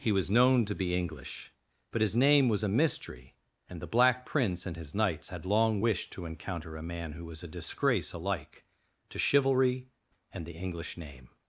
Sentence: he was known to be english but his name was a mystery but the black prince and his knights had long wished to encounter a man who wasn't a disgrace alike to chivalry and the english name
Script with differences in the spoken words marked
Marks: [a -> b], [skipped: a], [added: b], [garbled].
he was known to be english but his name was a mystery [but -> and] the black prince and his knights had long wished to encounter a man who [wasn't -> was] a disgrace alike to chivalry and the english name